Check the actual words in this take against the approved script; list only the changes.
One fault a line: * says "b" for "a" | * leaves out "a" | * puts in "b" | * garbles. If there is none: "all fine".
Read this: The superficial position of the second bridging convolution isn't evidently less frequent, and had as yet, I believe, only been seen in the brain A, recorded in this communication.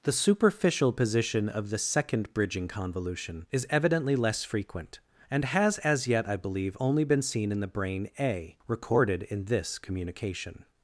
* says "is" for "isn't"
* says "has" for "had"